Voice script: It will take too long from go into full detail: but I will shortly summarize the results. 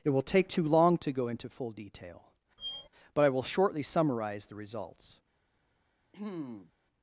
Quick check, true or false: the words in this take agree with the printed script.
false